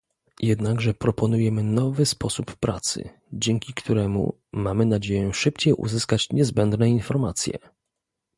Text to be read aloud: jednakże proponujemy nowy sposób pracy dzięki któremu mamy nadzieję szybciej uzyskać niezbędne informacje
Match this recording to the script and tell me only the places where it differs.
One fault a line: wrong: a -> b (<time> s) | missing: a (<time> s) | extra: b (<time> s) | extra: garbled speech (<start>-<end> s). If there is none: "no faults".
no faults